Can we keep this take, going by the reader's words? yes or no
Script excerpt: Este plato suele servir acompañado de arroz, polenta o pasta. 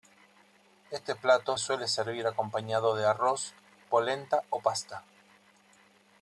yes